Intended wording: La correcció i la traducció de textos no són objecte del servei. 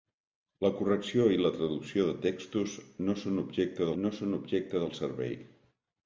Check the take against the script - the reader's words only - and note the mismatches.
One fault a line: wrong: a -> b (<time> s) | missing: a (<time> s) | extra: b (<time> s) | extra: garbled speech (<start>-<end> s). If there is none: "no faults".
extra: no són objecte (4.0 s)